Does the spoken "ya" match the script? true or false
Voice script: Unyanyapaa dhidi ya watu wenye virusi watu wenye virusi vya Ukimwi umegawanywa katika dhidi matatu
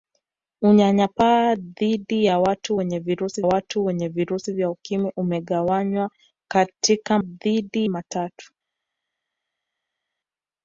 true